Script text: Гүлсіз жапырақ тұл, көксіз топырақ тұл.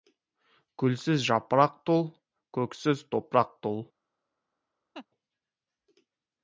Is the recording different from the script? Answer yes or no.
no